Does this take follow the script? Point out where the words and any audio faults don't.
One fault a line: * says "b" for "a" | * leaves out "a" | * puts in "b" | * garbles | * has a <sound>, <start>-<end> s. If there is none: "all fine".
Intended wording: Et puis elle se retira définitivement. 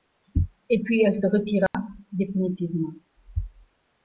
* has a dropout, 1.7-1.7 s